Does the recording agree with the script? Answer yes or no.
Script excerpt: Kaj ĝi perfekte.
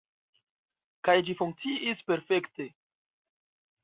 no